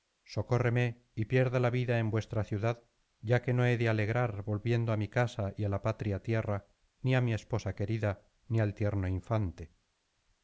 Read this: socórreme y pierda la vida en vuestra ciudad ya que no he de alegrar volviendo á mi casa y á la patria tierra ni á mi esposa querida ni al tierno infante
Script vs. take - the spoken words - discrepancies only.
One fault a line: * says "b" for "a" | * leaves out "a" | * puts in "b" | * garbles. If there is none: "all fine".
all fine